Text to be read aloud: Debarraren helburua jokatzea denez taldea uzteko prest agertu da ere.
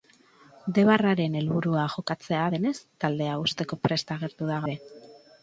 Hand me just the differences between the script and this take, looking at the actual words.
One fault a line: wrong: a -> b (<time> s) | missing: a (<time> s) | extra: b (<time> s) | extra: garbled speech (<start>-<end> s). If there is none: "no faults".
no faults